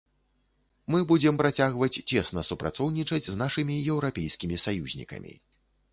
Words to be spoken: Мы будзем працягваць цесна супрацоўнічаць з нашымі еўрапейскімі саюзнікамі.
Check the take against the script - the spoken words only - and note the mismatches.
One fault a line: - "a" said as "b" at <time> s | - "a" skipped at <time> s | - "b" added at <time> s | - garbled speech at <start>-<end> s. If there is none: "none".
none